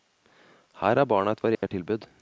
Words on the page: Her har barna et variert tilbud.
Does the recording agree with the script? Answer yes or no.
yes